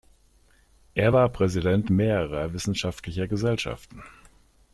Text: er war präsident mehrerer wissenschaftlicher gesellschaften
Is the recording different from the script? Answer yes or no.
no